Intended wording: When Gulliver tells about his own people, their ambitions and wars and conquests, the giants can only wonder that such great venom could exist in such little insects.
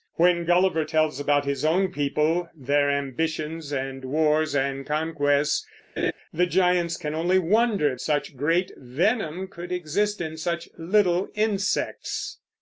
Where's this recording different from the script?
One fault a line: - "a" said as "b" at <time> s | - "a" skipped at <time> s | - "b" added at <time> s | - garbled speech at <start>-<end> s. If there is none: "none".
- "that" skipped at 8.0 s